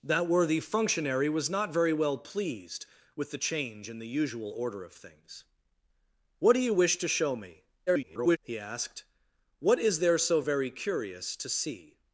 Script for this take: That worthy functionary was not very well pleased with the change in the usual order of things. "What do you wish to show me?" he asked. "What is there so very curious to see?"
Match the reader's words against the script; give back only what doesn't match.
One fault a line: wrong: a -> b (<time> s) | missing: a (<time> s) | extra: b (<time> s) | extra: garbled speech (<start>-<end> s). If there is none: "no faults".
extra: garbled speech (7.9-8.4 s)